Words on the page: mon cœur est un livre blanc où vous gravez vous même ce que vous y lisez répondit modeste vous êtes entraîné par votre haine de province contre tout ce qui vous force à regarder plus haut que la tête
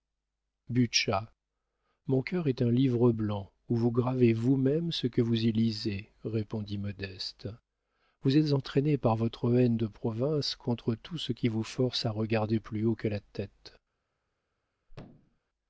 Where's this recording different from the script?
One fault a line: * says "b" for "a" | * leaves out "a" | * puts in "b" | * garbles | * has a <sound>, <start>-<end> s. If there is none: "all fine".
* has a thud, 14.9-15.4 s